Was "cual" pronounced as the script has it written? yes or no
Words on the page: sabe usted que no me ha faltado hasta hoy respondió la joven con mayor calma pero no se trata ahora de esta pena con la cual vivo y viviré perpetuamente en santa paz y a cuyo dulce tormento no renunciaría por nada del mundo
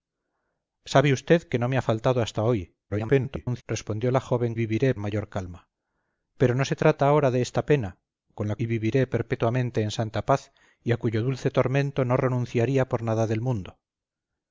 no